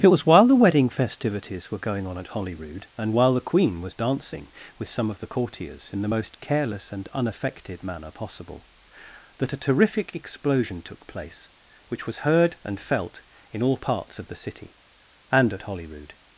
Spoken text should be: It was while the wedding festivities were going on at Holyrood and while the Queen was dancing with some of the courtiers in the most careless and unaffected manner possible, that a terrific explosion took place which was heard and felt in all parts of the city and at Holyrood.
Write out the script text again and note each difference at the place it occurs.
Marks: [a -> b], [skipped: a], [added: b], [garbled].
It was while the wedding festivities were going on at Holyrood and while the Queen was dancing with some of the courtiers in the most careless and unaffected manner possible, that a terrific explosion took place which was heard and felt in all parts of the city and at Holyrood.